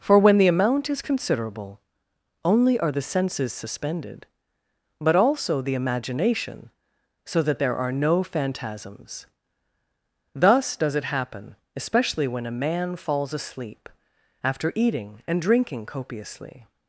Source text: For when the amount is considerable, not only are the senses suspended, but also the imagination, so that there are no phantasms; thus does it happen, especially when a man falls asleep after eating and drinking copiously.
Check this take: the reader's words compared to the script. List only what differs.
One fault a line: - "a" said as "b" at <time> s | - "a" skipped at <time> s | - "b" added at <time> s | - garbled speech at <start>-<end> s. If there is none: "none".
- "not" skipped at 1.8 s